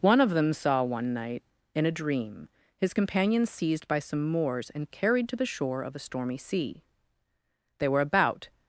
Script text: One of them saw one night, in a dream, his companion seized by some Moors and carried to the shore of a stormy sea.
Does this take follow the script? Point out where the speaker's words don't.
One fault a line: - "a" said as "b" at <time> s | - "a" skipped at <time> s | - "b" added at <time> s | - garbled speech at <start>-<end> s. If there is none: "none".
- "They were about" added at 7.8 s